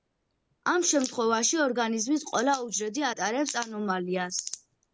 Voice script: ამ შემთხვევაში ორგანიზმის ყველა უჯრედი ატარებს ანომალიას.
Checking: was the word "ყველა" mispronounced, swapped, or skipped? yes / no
no